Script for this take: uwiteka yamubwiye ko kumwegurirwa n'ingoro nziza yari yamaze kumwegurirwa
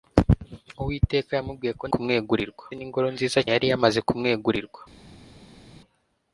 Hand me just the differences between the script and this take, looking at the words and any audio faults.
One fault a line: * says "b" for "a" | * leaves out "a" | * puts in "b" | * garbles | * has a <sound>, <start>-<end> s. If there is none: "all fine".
all fine